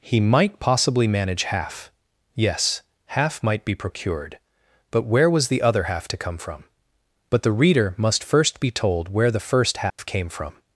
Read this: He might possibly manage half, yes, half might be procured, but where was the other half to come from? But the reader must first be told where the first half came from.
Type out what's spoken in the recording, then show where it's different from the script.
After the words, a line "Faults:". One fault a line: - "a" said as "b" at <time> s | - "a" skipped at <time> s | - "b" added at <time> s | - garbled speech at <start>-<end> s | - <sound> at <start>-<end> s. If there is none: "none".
He might possibly manage half, yes, half might be procured, but where was the other half to come from? But the reader must first be told where the first half came from.
Faults:
- dropout at 9.9-10.0 s